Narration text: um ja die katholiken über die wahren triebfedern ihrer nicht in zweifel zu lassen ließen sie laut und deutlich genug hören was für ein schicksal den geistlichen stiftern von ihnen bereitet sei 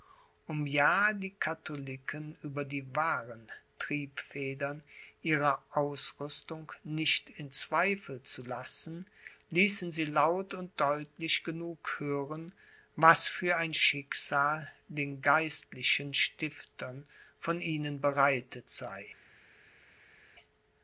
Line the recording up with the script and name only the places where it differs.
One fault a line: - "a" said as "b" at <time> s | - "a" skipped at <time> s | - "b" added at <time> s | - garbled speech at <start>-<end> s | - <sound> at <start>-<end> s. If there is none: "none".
- "ausrüstung" added at 5.7 s